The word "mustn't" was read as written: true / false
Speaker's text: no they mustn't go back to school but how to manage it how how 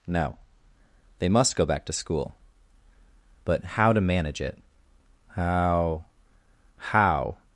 false